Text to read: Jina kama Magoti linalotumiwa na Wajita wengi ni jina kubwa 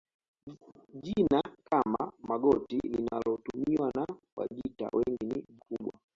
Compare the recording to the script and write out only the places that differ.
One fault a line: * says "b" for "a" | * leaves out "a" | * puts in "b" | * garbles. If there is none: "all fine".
* leaves out "jina"